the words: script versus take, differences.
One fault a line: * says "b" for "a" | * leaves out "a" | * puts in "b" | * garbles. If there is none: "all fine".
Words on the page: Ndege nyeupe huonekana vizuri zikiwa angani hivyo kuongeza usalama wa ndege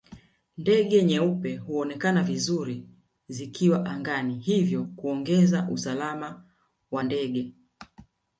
all fine